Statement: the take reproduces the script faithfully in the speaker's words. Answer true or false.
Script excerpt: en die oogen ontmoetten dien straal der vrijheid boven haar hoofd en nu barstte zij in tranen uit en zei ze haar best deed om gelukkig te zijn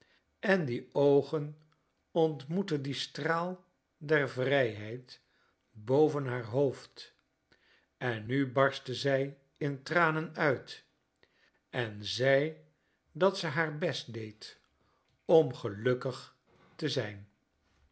false